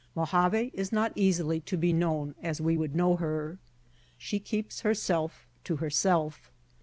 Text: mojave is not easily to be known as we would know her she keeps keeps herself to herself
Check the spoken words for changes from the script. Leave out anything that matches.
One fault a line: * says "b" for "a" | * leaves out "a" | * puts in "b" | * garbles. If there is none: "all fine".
* leaves out "keeps"